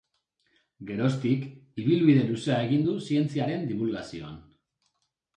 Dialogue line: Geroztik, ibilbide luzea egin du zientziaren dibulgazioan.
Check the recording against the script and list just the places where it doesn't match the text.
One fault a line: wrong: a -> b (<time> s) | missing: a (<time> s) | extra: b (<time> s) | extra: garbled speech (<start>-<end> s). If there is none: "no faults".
no faults